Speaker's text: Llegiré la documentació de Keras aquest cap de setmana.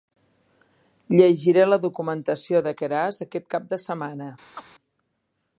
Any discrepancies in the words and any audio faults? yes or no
yes